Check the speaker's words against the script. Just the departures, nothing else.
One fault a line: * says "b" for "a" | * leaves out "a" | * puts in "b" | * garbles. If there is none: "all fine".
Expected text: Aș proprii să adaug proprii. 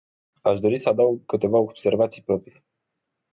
* says "dori" for "proprii"
* puts in "câteva observații"